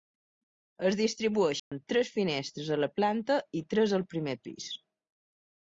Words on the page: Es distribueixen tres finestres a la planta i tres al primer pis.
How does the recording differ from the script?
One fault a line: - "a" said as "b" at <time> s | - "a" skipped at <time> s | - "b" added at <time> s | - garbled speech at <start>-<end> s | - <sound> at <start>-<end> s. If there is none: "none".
- dropout at 1.6-1.7 s